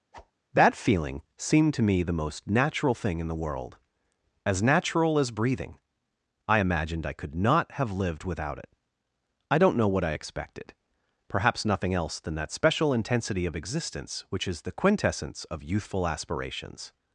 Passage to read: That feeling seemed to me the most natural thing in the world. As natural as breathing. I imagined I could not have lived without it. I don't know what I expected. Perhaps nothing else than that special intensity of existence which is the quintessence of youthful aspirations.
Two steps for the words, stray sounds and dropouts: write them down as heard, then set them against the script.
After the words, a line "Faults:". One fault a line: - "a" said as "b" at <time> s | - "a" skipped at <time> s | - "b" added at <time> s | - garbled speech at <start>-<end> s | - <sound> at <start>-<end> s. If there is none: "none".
That feeling seemed to me the most natural thing in the world. As natural as breathing. I imagined I could not have lived without it. I don't know what I expected. Perhaps nothing else than that special intensity of existence which is the quintessence of youthful aspirations.
Faults:
- whoosh at 0.1-0.3 s